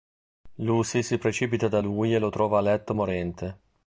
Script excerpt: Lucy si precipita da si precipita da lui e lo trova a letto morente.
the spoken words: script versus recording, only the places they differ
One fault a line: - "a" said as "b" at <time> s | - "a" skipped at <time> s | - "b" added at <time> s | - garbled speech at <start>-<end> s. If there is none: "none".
- "si precipita da" skipped at 1.8 s